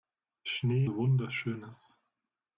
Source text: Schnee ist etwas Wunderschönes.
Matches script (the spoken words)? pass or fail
fail